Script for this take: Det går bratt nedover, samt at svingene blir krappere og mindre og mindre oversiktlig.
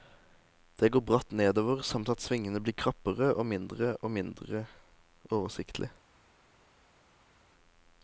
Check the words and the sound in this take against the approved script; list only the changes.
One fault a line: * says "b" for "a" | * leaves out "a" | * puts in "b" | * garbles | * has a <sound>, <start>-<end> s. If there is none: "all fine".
all fine